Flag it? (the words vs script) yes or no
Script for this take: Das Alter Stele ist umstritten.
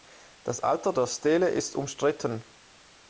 yes